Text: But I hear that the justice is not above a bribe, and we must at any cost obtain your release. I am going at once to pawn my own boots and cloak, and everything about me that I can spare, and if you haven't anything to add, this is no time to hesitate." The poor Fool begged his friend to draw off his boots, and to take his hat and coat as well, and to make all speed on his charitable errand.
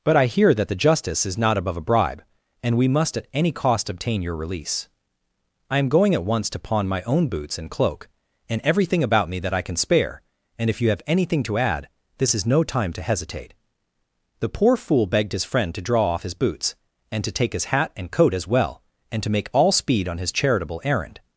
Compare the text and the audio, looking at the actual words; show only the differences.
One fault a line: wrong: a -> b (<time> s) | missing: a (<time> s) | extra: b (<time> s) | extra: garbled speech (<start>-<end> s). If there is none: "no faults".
wrong: haven't -> have (10.9 s)